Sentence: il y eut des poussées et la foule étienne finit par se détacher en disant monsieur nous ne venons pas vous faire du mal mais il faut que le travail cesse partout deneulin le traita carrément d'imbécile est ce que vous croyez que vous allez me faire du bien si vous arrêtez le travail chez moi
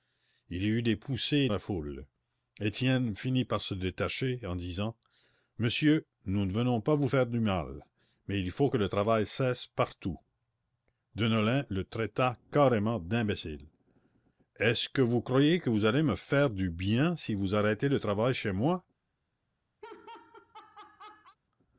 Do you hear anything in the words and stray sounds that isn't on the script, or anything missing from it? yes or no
yes